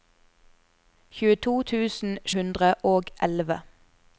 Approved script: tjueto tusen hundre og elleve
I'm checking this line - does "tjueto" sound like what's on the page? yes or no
yes